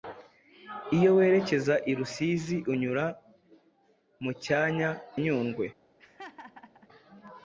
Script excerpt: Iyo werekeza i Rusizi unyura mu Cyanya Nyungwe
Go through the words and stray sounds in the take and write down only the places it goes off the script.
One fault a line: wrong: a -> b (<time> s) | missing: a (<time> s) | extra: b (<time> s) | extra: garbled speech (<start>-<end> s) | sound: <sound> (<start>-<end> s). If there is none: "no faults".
sound: laugh (6.0-6.9 s)